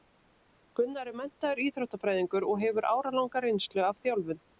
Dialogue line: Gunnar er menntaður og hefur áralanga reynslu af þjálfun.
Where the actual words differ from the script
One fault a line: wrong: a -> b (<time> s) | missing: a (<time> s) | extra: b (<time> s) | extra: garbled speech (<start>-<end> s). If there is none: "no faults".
extra: íþróttafræðingur (1.6 s)